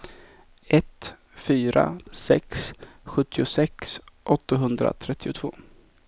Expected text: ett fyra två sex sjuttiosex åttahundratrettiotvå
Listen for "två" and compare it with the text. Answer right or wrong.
wrong